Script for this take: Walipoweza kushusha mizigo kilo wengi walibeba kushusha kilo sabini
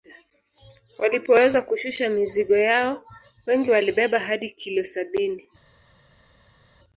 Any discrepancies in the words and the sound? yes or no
yes